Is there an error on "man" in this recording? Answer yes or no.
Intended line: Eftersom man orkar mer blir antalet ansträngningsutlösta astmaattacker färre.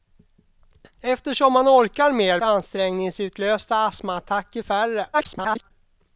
no